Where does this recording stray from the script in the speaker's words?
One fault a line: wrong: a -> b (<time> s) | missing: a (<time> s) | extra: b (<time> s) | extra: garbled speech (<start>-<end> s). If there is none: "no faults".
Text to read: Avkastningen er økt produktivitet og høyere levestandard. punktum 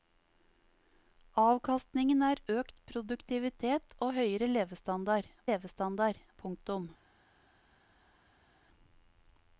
extra: levestandard (5.5 s)